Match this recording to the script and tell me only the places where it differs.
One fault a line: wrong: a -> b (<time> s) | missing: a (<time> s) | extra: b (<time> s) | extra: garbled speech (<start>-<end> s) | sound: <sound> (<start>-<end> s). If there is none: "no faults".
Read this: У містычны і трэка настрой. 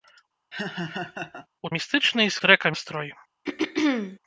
sound: laugh (0.5-1.5 s)
sound: throat clearing (3.5-4.2 s)